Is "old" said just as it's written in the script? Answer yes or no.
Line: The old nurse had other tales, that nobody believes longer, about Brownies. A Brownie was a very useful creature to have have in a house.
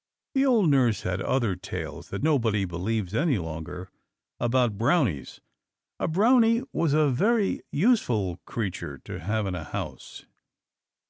yes